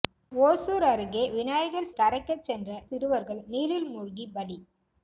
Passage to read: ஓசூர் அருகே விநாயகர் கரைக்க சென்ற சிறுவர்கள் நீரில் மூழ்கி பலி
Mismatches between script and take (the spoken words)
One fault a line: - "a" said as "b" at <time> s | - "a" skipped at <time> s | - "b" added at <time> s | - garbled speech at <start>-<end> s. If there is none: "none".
none